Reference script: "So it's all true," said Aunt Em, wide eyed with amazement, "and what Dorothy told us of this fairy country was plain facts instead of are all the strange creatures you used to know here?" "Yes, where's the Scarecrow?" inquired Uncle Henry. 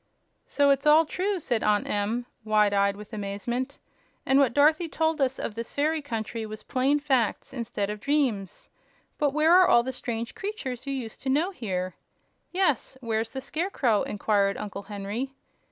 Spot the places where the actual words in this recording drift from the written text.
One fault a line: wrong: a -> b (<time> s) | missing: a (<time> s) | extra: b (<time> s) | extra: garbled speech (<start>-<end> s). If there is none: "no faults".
extra: dreams But where (8.0 s)